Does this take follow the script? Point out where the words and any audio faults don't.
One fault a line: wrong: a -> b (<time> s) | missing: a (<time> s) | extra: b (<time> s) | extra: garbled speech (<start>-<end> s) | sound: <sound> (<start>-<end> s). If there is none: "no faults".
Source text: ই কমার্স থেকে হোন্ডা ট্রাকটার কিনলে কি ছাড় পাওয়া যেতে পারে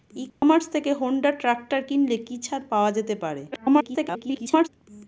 sound: dropout (0.3-0.4 s)
extra: garbled speech (3.5-4.7 s)